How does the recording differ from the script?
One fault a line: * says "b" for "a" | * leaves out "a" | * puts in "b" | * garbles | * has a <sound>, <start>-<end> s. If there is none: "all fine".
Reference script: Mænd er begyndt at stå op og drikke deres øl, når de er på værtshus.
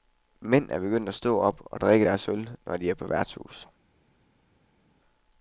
all fine